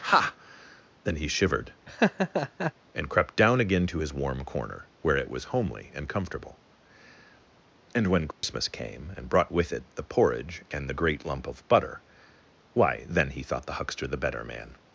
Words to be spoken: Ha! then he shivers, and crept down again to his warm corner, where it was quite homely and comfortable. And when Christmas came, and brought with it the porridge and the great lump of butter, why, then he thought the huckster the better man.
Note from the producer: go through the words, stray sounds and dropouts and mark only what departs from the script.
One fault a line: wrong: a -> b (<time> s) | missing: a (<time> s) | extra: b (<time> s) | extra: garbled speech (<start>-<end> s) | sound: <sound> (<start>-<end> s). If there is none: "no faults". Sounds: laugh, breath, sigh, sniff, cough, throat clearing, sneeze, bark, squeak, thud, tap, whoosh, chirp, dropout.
wrong: shivers -> shivered (1.3 s)
sound: laugh (1.9-2.7 s)
missing: quite (5.4 s)
sound: dropout (8.3-8.4 s)